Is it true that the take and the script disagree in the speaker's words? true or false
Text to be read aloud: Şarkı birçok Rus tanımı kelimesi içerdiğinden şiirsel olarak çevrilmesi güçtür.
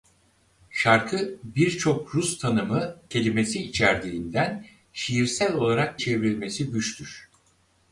false